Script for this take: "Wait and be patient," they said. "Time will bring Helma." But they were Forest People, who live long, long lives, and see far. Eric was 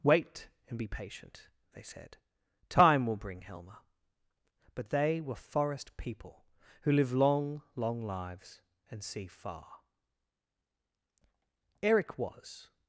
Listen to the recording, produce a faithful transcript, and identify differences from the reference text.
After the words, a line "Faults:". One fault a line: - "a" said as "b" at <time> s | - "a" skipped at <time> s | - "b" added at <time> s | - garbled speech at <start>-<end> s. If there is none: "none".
"Wait and be patient," they said. "Time will bring Helma." But they were Forest People, who live long, long lives, and see far. Eric was
Faults:
none